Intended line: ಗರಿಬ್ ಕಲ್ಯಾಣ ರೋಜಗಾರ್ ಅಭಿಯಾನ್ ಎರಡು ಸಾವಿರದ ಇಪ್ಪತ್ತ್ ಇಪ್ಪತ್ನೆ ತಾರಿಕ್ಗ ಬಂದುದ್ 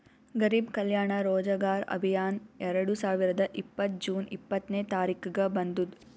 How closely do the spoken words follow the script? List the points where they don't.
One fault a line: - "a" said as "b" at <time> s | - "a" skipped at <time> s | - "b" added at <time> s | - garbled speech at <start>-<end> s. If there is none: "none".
- "ಜೂನ್" added at 4.1 s